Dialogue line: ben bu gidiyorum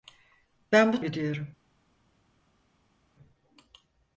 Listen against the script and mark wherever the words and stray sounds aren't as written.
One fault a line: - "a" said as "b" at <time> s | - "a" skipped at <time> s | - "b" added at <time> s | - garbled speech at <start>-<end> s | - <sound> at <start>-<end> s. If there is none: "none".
none